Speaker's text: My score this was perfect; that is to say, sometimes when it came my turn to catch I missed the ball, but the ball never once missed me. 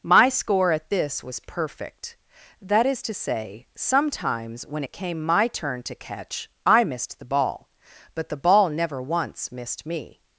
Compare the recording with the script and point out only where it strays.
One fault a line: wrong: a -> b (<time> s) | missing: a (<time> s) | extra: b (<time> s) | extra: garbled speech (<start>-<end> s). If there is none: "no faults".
extra: at (0.7 s)